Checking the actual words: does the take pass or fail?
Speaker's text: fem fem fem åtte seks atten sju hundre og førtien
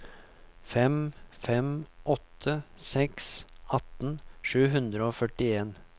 fail